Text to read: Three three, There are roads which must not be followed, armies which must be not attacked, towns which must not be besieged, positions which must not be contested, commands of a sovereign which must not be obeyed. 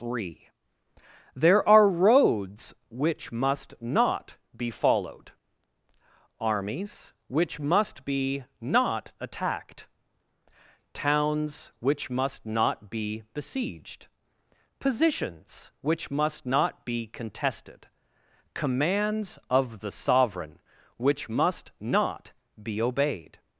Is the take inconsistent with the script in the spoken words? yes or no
yes